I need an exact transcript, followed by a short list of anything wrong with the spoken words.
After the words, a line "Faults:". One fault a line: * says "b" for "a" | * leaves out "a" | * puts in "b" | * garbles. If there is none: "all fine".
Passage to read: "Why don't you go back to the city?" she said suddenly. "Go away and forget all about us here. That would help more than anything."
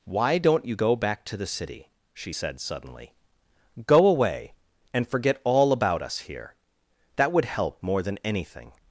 "Why don't you go back to the city?" she said suddenly. "Go away and forget all about us here. That would help more than anything."
Faults:
all fine